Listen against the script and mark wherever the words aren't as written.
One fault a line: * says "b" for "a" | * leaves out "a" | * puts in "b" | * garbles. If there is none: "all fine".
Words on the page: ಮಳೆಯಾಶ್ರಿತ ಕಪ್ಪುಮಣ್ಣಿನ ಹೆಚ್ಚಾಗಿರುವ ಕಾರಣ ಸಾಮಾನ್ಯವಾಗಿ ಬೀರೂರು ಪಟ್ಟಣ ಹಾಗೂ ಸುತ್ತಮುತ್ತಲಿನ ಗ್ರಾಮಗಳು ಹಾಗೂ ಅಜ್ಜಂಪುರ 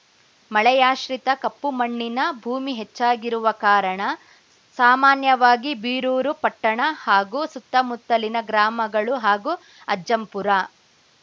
* puts in "ಭೂಮಿ"